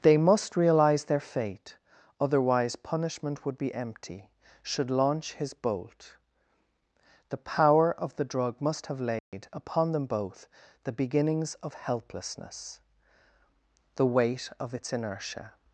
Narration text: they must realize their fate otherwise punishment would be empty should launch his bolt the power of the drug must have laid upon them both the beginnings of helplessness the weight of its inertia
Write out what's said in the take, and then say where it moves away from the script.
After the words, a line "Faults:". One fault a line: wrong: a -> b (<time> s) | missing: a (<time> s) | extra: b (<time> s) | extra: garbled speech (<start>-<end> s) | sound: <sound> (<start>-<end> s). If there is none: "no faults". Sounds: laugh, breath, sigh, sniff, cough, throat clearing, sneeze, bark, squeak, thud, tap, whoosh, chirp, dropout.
they must realize their fate otherwise punishment would be empty should launch his bolt the power of the drug must have laid upon them both the beginnings of helplessness the weight of its inertia
Faults:
sound: dropout (9.2-9.3 s)